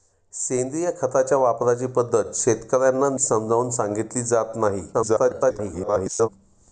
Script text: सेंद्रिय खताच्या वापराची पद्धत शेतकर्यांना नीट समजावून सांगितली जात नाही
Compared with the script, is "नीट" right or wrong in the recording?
wrong